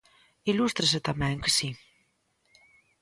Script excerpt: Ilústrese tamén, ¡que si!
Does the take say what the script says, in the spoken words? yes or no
yes